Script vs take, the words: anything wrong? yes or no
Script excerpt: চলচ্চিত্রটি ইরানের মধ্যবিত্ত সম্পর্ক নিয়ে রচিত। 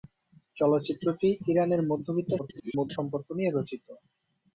yes